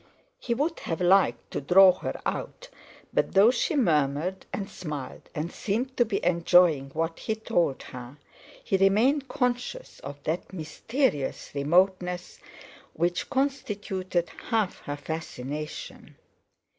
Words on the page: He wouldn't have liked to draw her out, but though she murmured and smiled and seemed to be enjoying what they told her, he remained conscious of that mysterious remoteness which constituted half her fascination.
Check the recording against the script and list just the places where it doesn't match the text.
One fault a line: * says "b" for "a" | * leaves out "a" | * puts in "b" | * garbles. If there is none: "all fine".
* says "would" for "wouldn't"
* says "he" for "they"